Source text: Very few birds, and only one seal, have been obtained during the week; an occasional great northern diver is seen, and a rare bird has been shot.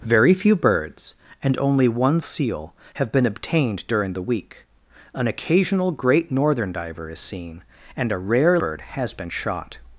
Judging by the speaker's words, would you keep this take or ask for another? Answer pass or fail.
pass